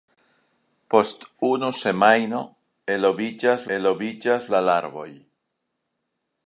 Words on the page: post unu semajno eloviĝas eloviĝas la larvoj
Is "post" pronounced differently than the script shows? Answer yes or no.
no